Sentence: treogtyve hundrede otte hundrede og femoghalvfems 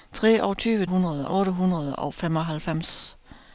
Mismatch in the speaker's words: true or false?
false